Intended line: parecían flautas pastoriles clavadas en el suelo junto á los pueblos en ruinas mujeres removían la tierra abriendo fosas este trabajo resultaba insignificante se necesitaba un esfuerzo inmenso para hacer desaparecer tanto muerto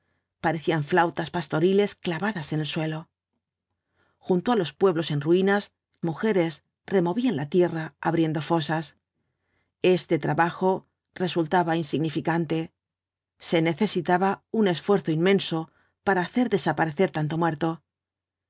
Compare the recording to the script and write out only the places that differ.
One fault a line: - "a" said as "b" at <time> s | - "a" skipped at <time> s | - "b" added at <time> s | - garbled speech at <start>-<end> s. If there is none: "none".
none